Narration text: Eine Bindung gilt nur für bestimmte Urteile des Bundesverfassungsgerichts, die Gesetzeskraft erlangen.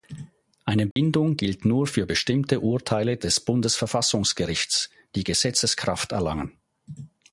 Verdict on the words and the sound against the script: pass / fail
fail